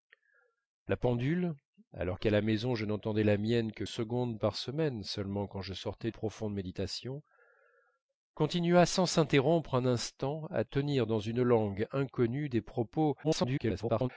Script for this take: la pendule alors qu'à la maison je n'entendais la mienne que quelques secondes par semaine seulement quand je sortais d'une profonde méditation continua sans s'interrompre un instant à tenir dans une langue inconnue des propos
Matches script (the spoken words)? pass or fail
fail